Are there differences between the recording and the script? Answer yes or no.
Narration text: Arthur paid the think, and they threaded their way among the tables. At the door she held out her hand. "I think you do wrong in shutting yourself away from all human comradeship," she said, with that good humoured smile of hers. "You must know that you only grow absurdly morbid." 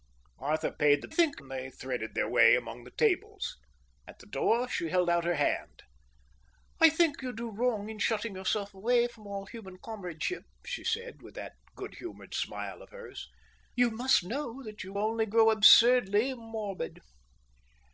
no